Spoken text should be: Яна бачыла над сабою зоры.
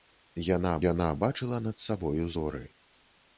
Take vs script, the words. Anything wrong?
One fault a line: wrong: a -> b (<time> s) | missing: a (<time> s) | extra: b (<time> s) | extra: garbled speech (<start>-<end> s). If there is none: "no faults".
extra: яна (0.9 s)